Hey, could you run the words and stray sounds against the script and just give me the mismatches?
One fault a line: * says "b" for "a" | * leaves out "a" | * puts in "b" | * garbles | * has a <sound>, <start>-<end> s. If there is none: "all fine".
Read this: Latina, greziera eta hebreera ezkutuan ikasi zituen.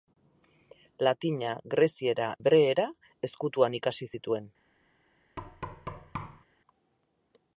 * leaves out "eta"
* has a thud, 5.4-6.4 s